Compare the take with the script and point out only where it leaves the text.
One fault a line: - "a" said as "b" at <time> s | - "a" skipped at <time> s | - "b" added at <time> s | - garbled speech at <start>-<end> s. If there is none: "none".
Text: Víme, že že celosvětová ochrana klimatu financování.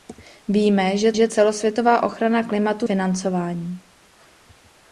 none